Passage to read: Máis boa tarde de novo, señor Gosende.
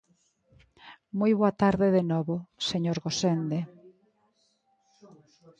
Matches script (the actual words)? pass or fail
fail